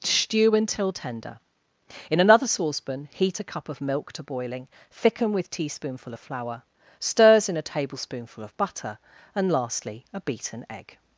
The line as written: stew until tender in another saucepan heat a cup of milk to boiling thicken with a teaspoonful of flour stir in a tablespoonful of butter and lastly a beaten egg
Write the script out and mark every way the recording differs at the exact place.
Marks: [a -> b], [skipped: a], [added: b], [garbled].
stew until tender in another saucepan heat a cup of milk to boiling thicken with [skipped: a] teaspoonful of flour [stir -> stirs] in a tablespoonful of butter and lastly a beaten egg